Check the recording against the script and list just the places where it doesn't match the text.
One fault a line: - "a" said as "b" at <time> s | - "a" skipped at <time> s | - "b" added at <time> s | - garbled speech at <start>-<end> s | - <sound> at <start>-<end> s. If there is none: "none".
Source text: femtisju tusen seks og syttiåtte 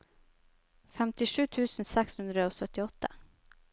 - "hundre" added at 2.2 s